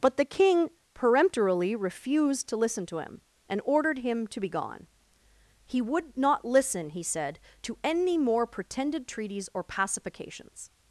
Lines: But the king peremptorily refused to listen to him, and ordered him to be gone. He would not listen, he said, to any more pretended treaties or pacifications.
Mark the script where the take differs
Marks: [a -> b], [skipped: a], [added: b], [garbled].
But the king peremptorily refused to listen to him, and ordered him to be gone. He would not listen, he said, to any more pretended treaties or pacifications.